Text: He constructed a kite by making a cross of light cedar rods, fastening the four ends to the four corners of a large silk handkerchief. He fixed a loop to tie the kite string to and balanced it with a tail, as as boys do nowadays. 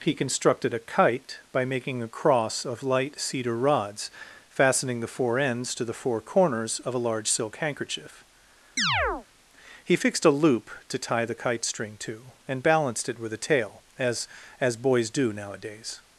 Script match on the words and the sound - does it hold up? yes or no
no